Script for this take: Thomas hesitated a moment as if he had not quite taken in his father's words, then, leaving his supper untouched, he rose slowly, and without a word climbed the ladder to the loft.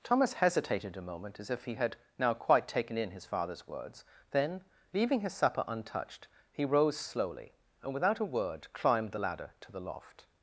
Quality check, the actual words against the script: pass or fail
fail